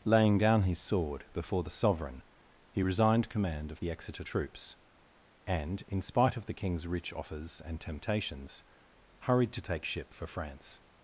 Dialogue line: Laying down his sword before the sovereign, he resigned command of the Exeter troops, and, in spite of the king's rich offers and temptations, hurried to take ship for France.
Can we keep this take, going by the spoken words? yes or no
yes